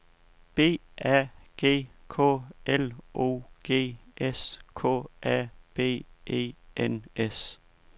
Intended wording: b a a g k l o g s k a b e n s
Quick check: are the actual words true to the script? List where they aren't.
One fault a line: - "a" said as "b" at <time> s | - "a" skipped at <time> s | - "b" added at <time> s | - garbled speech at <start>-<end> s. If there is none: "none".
- "a" skipped at 1.3 s